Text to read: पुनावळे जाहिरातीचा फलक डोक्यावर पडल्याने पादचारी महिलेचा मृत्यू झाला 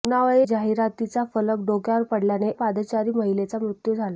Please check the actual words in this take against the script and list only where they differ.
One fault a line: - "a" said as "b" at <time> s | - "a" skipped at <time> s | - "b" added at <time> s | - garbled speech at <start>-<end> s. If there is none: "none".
none